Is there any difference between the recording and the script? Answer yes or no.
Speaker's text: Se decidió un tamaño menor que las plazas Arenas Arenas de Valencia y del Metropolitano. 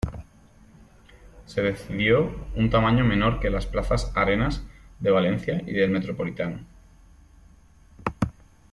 yes